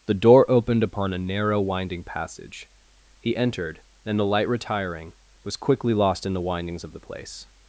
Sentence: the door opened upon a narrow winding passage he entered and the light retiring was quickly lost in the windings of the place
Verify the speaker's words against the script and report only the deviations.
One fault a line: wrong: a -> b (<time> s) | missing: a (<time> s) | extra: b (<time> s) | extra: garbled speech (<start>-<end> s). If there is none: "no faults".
no faults